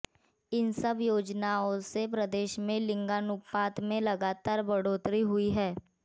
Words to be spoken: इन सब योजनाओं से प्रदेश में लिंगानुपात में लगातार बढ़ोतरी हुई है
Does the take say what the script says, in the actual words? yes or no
yes